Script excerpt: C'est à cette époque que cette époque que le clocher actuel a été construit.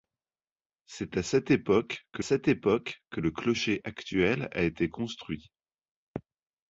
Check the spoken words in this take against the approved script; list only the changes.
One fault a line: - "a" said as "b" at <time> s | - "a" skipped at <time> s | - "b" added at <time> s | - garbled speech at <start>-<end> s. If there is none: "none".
none